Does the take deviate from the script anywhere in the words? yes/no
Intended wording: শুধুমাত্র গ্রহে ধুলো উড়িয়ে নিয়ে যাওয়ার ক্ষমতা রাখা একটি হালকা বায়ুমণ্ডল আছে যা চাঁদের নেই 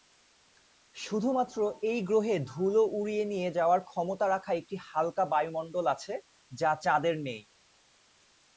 yes